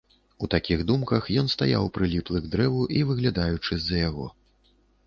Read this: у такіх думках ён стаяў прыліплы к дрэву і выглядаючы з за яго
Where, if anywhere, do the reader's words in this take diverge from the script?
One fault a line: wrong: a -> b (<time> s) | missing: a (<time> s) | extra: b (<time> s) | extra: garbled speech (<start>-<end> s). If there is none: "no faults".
no faults